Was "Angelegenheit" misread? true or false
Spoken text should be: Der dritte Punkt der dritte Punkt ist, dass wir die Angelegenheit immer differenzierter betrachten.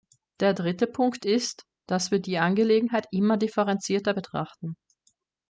false